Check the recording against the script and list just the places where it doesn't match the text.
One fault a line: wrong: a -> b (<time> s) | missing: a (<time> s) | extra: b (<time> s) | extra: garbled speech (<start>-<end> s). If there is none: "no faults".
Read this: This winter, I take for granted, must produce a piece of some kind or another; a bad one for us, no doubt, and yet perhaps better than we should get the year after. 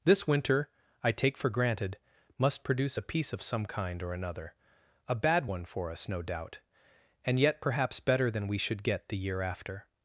no faults